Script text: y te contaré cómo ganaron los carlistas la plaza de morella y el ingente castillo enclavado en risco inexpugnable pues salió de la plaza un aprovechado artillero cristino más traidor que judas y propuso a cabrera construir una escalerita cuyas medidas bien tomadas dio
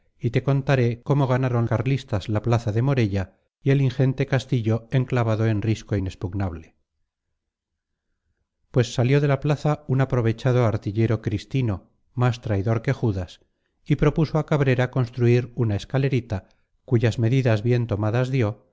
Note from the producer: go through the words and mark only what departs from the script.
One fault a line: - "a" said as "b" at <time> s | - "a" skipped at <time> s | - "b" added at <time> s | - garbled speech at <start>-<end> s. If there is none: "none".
- "los" skipped at 1.6 s